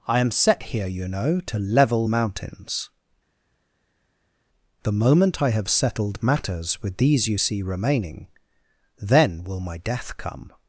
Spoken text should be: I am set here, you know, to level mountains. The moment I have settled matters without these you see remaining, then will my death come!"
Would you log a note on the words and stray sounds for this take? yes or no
yes